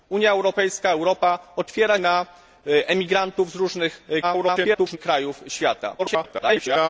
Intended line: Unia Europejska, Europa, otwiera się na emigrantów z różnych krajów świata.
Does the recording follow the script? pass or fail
fail